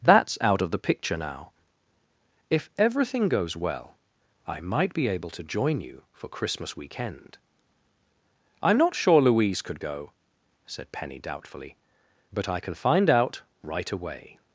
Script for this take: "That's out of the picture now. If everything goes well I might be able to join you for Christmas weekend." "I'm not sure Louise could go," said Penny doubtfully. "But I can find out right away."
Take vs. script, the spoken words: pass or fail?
pass